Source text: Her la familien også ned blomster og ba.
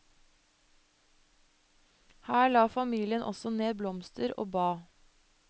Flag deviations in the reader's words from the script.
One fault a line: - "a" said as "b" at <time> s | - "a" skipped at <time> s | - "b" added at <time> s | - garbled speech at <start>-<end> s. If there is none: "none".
none